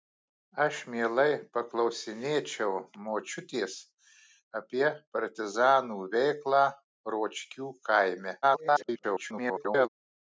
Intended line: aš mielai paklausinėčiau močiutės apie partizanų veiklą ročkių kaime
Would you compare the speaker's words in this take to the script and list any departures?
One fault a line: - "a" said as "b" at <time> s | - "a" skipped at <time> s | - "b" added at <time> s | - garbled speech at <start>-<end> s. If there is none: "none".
- garbled speech at 8.4-9.9 s